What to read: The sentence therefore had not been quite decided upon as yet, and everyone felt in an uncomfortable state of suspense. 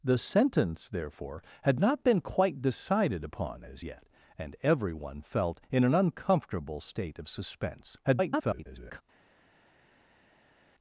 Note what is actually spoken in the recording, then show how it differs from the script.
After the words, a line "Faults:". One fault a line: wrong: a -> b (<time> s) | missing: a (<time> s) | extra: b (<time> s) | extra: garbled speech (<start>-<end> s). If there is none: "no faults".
The sentence therefore had not been quite decided upon as yet, and everyone felt in an uncomfortable state of suspense. [garbled]
Faults:
extra: garbled speech (8.0-9.0 s)